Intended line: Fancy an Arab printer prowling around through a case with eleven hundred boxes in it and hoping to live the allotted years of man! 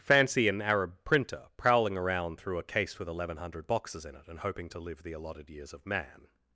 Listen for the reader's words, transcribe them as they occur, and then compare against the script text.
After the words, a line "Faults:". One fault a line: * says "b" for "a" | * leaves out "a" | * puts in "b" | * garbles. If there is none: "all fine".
Fancy an Arab printer prowling around through a case with eleven hundred boxes in it and hoping to live the allotted years of man!
Faults:
all fine